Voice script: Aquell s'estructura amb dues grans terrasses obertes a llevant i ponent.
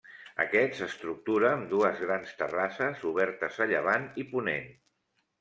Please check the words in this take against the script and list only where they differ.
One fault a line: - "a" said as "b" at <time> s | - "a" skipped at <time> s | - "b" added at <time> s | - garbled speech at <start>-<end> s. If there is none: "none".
- "Aquell" said as "Aquest" at 0.4 s